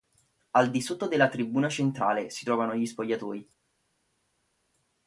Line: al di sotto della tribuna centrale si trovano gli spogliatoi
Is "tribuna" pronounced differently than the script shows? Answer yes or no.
no